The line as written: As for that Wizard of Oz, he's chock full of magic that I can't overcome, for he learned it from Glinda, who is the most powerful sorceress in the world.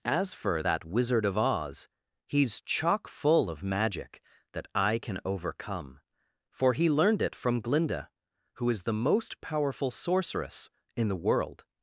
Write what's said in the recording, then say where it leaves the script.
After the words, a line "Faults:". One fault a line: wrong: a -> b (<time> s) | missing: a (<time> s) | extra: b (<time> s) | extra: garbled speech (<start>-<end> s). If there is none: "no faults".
As for that Wizard of Oz, he's chock full of magic that I can overcome, for he learned it from Glinda, who is the most powerful sorceress in the world.
Faults:
wrong: can't -> can (5.0 s)